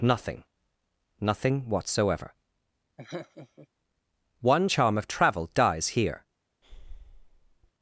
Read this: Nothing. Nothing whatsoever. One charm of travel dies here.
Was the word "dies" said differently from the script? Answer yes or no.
no